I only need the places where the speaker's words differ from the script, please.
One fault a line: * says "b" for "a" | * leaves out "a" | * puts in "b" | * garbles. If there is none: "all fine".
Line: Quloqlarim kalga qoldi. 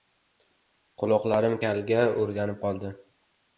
* puts in "o‘rganib"